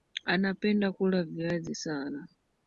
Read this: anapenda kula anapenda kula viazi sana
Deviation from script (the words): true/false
true